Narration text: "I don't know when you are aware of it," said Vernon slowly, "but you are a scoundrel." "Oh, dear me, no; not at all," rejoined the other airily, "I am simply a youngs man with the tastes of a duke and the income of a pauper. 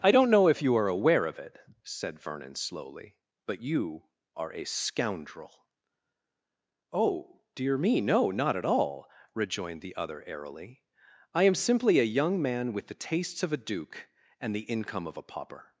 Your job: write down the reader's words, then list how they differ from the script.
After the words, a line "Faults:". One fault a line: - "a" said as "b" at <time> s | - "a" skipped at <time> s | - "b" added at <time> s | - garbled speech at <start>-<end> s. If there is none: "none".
"I don't know if you are aware of it," said Vernon slowly, "but you are a scoundrel." "Oh, dear me, no; not at all," rejoined the other airily, "I am simply a young man with the tastes of a duke and the income of a pauper.
Faults:
- "when" said as "if" at 0.5 s
- "youngs" said as "young" at 12.0 s